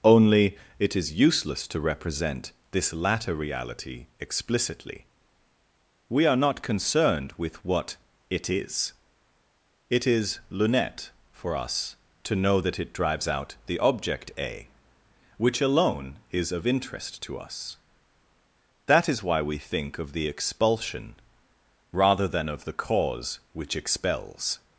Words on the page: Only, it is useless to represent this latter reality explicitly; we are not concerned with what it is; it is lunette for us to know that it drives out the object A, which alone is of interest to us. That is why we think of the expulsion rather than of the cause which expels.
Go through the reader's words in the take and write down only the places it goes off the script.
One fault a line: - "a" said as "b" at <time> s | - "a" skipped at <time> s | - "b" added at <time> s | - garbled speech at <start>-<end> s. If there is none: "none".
none